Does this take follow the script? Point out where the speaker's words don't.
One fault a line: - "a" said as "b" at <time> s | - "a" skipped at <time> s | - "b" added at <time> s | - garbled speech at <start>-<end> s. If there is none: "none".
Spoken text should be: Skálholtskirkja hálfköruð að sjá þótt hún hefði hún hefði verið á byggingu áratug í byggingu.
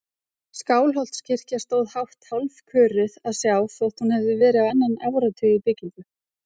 - "stóð hátt" added at 1.6 s
- "hún hefði" skipped at 4.4 s
- "byggingu" said as "annan" at 4.8 s